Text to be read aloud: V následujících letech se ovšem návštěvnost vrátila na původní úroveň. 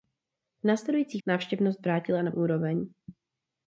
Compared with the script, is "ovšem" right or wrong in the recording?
wrong